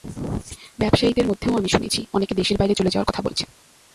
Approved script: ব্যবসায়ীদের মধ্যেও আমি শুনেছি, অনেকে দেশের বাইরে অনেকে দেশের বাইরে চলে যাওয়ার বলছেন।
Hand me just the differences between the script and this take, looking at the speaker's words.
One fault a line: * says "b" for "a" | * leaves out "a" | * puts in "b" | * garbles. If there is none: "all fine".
* leaves out "অনেকে দেশের বাইরে"
* puts in "কথা"